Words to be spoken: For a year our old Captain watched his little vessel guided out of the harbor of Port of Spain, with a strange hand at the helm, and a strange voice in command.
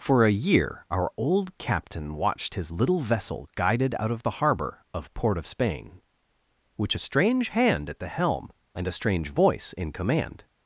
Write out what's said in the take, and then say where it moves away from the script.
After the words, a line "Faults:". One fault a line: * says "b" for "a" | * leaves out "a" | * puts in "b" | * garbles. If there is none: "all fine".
For a year our old Captain watched his little vessel guided out of the harbor of Port of Spain, which a strange hand at the helm, and a strange voice in command.
Faults:
* says "which" for "with"